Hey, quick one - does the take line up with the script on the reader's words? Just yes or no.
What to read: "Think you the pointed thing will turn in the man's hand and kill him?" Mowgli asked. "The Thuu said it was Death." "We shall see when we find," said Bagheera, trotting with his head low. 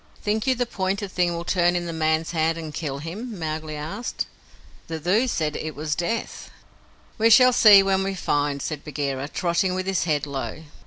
yes